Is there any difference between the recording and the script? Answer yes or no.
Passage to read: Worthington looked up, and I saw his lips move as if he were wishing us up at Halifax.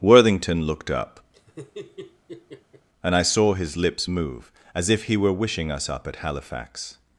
no